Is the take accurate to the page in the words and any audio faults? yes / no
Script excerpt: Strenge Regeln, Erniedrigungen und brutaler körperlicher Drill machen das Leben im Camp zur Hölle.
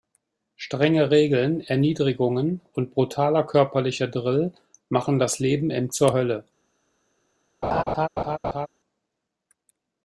no